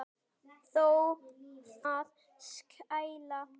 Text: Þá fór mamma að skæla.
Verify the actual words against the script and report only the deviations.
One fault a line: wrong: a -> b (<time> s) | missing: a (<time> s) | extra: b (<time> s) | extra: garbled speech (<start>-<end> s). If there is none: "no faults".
missing: fór mamma (0.8 s)